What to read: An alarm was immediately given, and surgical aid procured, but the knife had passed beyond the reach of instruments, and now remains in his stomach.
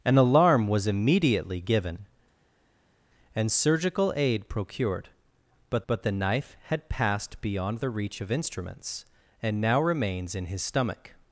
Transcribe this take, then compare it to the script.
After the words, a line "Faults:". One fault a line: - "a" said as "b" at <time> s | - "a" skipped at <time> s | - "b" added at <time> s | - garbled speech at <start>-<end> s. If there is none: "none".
An alarm was immediately given, and surgical aid procured, but but the knife had passed beyond the reach of instruments, and now remains in his stomach.
Faults:
- "but" added at 5.9 s